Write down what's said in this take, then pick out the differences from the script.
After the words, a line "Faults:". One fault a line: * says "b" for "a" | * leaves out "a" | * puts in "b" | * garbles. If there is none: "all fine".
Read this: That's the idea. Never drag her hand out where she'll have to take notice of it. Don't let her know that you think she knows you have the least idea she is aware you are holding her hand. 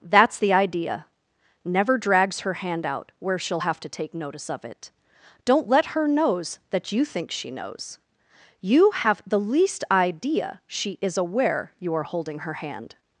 That's the idea. Never drags her hand out where she'll have to take notice of it. Don't let her knows that you think she knows you have the least idea she is aware you are holding her hand.
Faults:
* says "drags" for "drag"
* says "knows" for "know"